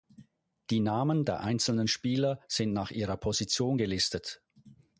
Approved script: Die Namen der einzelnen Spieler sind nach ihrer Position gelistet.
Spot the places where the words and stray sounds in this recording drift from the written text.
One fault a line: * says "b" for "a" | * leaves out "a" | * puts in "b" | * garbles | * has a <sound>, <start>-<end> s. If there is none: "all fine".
all fine